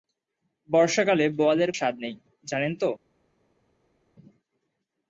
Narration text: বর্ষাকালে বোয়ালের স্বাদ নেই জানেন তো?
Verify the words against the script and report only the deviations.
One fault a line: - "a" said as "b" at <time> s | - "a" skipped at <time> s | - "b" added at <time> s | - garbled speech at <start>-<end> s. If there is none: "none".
none